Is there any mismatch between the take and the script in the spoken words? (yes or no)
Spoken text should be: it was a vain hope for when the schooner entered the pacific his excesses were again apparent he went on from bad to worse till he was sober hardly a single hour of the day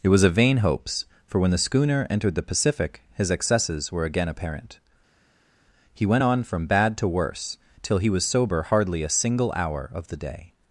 yes